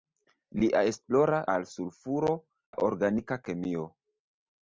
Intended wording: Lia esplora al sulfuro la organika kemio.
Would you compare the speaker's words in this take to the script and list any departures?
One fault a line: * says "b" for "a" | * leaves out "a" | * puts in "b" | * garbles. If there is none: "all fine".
all fine